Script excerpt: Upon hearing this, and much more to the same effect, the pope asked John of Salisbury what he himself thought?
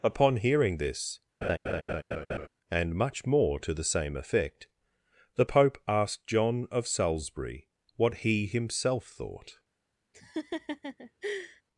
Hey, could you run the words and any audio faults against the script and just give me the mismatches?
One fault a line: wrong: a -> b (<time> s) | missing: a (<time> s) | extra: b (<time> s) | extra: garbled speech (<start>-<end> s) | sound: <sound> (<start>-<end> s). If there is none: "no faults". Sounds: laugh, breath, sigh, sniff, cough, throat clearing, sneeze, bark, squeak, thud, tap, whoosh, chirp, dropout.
sound: laugh (1.4-2.5 s)
sound: laugh (10.1-11.6 s)